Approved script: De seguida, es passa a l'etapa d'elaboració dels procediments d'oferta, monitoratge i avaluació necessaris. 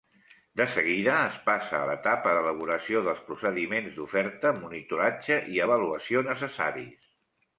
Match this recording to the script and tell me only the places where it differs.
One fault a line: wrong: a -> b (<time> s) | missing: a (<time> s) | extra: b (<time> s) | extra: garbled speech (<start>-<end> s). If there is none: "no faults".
no faults